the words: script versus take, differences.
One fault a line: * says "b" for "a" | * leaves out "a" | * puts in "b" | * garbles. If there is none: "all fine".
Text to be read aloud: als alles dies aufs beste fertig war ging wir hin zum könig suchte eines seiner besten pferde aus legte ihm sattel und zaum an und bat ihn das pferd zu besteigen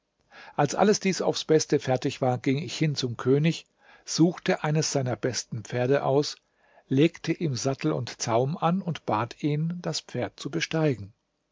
* says "ich" for "wir"